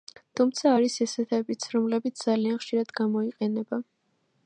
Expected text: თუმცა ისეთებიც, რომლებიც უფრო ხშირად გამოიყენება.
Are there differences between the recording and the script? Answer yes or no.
yes